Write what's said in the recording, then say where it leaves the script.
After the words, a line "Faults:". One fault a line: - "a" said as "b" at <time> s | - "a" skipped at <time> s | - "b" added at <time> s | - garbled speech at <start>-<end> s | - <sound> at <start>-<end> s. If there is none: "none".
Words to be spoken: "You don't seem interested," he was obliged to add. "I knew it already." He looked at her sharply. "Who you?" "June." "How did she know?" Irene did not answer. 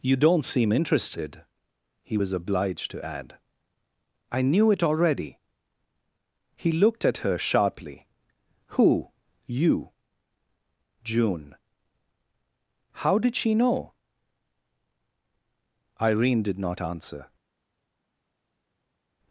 "You don't seem interested," he was obliged to add. "I knew it already." He looked at her sharply. "Who you?" "June." "How did she know?" Irene did not answer.
Faults:
none